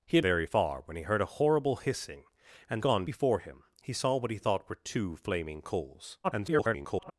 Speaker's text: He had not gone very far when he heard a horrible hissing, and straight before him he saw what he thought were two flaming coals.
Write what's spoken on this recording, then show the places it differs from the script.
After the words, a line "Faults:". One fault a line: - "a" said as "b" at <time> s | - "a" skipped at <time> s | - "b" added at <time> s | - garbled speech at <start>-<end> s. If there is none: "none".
He had very far when he heard a horrible hissing, and gone before him he saw what he thought were two flaming coals. [garbled]
Faults:
- "not gone" skipped at 0.2 s
- "straight" said as "gone" at 2.8 s
- garbled speech at 6.2-7.1 s